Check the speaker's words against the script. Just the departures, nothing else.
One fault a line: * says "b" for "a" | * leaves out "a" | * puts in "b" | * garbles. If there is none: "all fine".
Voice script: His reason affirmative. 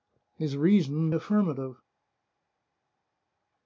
all fine